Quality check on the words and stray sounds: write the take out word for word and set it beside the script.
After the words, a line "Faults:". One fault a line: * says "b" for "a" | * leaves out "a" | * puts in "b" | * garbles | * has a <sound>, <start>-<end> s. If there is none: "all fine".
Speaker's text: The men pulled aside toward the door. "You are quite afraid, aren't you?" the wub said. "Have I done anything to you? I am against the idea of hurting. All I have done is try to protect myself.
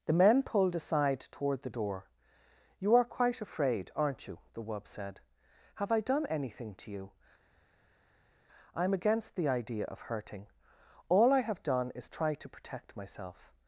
The men pulled aside toward the door. "You are quite afraid, aren't you?" the wub said. "Have I done anything to you? I am against the idea of hurting. All I have done is try to protect myself.
Faults:
all fine